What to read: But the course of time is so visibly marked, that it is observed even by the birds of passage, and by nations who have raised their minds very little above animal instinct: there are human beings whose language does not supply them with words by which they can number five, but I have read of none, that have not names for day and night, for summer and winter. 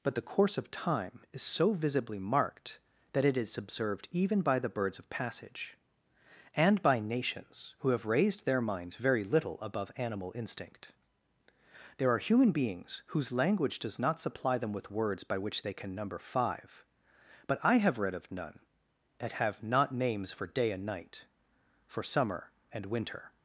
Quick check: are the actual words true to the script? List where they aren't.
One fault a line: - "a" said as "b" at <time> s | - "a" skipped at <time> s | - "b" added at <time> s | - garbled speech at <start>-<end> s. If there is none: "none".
none